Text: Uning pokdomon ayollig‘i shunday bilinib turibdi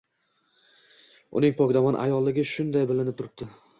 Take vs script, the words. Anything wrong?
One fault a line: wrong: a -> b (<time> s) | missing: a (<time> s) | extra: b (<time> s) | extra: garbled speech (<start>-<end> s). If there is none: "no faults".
no faults